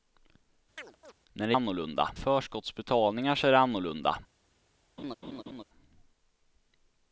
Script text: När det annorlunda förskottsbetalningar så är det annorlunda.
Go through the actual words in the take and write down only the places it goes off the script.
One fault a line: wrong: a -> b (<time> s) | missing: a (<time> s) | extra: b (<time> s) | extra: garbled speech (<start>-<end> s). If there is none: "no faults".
no faults